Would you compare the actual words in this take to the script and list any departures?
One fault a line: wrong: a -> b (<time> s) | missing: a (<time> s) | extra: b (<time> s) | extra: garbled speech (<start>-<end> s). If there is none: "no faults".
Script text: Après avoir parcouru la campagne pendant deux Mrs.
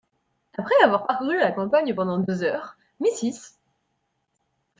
extra: heures (2.4 s)